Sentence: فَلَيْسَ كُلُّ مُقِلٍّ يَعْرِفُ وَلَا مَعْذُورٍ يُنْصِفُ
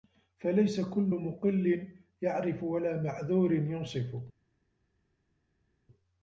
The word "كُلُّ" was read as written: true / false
true